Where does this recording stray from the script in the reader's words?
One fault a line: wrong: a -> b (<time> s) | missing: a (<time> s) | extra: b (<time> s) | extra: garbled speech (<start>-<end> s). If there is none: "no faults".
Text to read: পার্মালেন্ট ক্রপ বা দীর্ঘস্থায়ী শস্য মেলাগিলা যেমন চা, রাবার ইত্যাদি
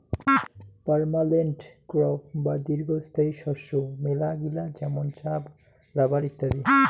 no faults